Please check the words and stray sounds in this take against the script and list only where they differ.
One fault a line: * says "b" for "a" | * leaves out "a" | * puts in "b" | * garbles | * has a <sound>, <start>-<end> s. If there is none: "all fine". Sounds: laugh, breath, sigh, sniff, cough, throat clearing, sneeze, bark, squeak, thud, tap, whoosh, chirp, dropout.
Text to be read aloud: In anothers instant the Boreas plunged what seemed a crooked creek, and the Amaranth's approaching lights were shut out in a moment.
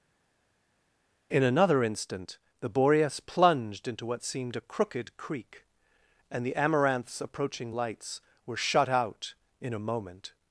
* says "another" for "anothers"
* puts in "into"